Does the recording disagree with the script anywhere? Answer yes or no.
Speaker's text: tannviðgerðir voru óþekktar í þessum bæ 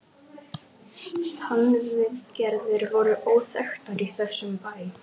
no